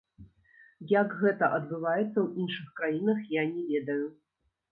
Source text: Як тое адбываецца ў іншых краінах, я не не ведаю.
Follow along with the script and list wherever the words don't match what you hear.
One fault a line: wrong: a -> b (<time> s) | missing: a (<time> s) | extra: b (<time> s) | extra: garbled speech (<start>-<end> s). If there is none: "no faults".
wrong: тое -> гэта (1.2 s)
missing: не (3.6 s)